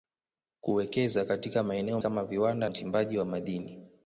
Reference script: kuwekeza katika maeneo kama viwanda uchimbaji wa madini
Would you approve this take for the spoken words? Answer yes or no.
yes